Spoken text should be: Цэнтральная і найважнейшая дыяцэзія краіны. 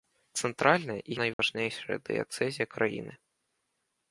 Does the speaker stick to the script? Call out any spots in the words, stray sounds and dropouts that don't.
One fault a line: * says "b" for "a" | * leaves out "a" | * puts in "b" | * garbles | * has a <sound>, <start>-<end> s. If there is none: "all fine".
* has a dropout, 1.3-1.4 s